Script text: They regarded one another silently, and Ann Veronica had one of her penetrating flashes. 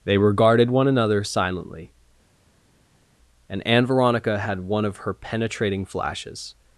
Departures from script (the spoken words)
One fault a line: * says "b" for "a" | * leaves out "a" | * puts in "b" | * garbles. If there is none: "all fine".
all fine